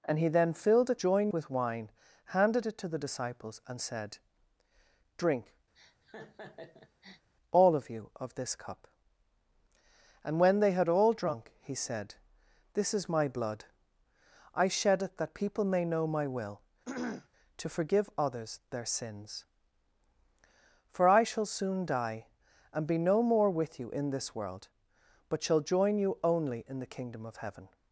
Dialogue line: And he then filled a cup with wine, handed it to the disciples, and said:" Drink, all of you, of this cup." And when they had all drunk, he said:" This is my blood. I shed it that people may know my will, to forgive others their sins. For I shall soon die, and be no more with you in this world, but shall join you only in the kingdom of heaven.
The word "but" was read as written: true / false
true